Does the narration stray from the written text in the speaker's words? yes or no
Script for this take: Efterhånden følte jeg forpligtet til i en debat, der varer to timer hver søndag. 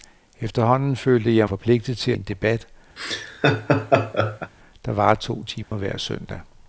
no